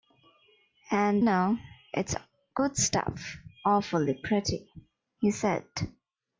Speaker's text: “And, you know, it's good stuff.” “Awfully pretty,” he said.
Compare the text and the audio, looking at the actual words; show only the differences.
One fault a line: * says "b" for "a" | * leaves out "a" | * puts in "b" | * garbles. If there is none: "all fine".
* leaves out "you"